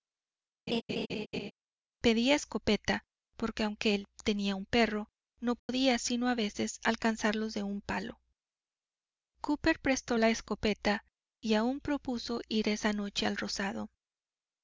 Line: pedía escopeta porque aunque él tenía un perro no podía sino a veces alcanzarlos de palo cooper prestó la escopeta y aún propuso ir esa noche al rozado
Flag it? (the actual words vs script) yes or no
yes